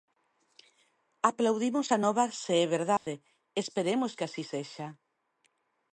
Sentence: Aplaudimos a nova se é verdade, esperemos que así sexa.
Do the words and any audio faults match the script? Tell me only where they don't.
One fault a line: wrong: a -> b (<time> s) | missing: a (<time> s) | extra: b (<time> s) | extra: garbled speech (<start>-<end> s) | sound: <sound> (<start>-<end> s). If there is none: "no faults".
sound: dropout (3.0-3.1 s)